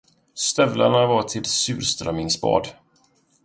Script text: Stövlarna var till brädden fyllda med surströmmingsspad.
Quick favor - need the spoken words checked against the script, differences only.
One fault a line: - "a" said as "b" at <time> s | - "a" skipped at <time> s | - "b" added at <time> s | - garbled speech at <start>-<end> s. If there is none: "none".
- "brädden fyllda med" skipped at 1.5 s